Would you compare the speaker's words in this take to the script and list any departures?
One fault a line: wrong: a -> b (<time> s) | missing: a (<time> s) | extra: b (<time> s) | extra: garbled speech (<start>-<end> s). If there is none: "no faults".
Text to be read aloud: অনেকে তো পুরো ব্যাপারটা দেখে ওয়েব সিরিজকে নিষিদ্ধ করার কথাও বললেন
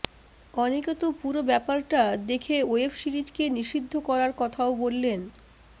no faults